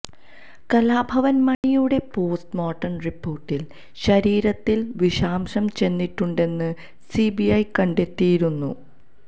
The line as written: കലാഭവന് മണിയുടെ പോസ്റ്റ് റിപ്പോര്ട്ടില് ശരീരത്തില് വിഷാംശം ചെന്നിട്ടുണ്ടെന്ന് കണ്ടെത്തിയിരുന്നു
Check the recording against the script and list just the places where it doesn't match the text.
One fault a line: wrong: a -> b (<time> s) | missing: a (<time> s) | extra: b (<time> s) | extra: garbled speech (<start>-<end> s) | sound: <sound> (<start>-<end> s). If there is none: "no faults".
sound: dropout (1.5-1.6 s)
extra: മോര്ട്ടം (2.6 s)
extra: സിബിഐ (7.1 s)